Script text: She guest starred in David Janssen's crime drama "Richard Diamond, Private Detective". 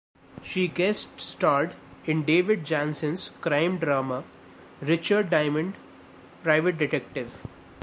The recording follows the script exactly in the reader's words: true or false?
true